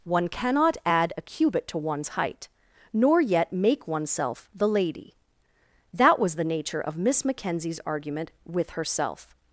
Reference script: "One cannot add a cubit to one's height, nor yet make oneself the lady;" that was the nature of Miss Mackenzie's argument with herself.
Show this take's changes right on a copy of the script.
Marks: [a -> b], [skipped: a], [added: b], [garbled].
"One cannot add a cubit to one's height, nor yet make oneself the lady;" that was the nature of Miss Mackenzie's argument with herself.